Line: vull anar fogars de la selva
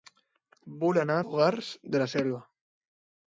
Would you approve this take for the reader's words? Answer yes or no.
yes